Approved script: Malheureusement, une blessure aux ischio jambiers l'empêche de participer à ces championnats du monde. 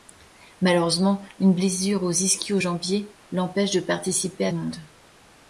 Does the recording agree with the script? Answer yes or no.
no